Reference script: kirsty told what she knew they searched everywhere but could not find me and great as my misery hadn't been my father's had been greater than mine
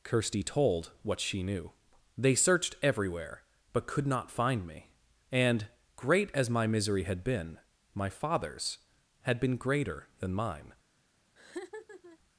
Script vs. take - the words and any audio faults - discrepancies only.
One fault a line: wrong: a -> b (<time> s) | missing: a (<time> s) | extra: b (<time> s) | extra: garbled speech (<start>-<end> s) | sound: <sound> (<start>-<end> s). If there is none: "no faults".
wrong: hadn't -> had (7.0 s)
sound: laugh (11.4-12.2 s)